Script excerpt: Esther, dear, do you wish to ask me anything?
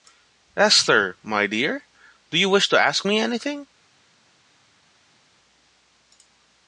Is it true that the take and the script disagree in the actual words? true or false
true